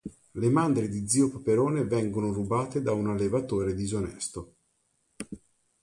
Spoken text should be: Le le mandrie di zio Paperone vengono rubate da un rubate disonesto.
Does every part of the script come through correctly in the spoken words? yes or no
no